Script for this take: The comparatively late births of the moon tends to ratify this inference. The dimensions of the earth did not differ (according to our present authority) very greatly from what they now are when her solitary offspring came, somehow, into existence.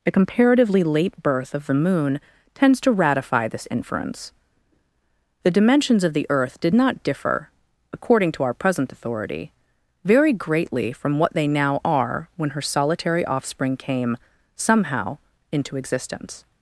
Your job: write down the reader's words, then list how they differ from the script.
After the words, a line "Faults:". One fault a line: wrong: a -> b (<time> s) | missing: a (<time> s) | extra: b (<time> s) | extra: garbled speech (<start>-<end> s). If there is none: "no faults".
The comparatively late birth of the moon tends to ratify this inference. The dimensions of the earth did not differ (according to our present authority) very greatly from what they now are when her solitary offspring came, somehow, into existence.
Faults:
wrong: births -> birth (1.2 s)